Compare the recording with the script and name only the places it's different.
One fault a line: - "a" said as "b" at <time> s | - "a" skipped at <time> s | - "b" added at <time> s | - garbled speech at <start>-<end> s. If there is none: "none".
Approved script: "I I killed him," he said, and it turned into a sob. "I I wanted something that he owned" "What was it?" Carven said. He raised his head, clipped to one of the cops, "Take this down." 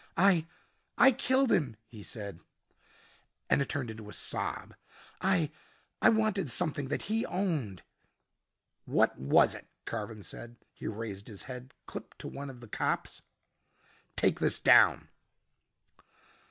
none